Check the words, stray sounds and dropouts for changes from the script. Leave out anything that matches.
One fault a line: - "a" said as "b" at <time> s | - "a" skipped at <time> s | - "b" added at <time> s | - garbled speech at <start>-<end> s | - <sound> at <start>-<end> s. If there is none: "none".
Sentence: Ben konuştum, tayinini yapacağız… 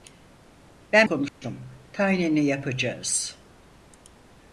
- dropout at 1.3-1.4 s